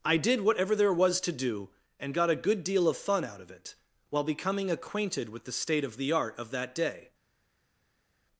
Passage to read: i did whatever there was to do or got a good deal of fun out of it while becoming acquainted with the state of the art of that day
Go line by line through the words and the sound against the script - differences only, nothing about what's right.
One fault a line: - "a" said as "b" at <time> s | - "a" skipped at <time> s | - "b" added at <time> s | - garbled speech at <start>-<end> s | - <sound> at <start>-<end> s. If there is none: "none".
- "or" said as "and" at 2.0 s